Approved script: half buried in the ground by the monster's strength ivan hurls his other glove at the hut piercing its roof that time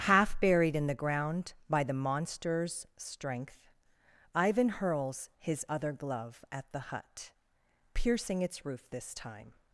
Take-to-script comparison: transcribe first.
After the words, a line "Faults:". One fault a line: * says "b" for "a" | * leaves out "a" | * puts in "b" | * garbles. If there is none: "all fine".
half buried in the ground by the monster's strength ivan hurls his other glove at the hut piercing its roof this time
Faults:
* says "this" for "that"